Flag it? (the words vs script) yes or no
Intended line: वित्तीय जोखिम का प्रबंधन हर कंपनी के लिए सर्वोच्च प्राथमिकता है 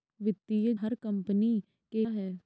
yes